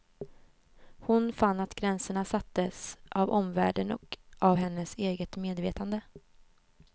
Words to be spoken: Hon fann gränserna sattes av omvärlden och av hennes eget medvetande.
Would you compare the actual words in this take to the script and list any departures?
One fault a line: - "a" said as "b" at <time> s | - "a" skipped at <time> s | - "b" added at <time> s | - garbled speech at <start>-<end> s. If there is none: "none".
- "att" added at 1.6 s